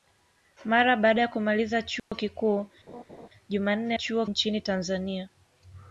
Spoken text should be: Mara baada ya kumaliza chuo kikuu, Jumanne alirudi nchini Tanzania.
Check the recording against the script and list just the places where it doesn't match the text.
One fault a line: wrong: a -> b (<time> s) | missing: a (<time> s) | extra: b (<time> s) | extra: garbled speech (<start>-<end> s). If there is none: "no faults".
wrong: alirudi -> chuo (3.9 s)